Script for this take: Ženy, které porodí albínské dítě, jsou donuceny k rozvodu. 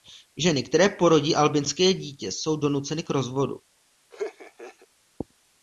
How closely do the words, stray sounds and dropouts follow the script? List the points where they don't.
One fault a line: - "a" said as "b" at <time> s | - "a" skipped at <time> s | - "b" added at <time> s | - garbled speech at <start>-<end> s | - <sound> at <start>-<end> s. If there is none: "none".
- laugh at 4.1-4.9 s